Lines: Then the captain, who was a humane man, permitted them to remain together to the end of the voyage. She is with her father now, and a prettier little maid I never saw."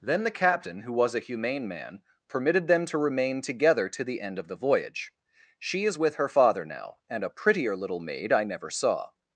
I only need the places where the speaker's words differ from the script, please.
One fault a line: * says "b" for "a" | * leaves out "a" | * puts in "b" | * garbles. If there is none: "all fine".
all fine